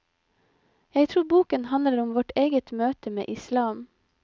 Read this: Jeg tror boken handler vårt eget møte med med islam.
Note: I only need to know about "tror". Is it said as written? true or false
true